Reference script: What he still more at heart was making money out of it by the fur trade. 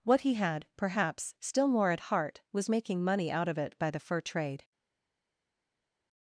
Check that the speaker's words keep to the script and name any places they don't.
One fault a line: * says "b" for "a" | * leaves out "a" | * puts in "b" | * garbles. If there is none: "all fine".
* puts in "had perhaps"